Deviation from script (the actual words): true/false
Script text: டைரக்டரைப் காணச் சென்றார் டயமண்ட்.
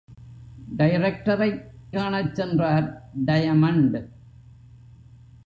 false